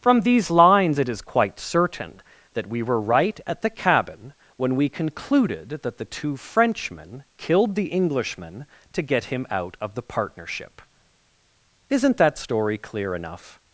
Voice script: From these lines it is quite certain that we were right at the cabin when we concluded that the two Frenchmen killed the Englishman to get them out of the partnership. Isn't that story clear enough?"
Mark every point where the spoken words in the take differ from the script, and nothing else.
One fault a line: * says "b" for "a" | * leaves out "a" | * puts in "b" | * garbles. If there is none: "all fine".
* says "him" for "them"